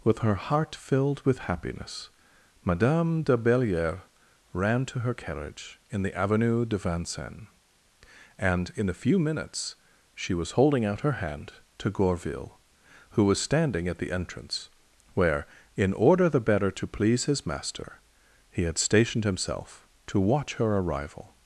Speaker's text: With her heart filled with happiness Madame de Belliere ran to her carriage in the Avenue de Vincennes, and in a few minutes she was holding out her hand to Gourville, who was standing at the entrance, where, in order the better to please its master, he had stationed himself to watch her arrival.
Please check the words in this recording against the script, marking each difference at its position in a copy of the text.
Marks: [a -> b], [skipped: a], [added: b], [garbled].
With her heart filled with happiness Madame de Belliere ran to her carriage in the Avenue de Vincennes, and in a few minutes she was holding out her hand to Gourville, who was standing at the entrance, where, in order the better to please [its -> his] master, he had stationed himself to watch her arrival.